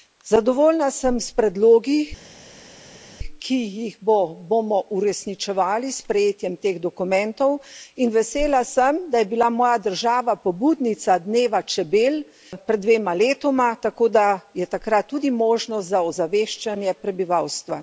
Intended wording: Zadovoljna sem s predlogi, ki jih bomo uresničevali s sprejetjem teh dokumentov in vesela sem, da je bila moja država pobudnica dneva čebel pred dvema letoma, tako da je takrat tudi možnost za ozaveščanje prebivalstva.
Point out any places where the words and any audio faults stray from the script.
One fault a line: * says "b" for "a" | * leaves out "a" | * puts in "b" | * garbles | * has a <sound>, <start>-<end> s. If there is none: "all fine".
all fine